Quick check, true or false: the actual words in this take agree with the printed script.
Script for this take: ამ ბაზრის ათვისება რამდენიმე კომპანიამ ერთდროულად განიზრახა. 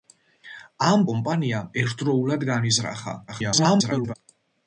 false